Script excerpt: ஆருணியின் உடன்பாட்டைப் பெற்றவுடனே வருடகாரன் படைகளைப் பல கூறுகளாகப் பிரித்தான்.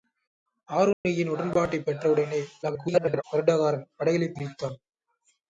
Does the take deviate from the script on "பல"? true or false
true